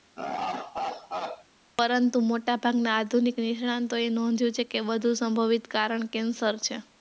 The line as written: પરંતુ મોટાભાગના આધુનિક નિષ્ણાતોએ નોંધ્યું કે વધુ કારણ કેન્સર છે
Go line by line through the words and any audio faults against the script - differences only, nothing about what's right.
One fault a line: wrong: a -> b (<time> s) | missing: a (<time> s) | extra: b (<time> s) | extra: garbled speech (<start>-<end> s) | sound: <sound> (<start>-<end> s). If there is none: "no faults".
sound: laugh (0.2-1.4 s)
extra: છે (4.5 s)
extra: સંભવિત (5.1 s)